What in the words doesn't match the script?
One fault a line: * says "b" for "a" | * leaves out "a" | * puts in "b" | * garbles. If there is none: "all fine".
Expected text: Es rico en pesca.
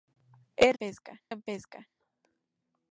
* says "pesca" for "rico"